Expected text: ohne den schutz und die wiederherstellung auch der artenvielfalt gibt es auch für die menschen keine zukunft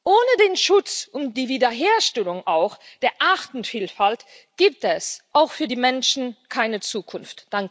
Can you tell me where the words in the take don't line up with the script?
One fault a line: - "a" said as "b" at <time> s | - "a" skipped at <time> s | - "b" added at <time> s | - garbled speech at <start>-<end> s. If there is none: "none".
none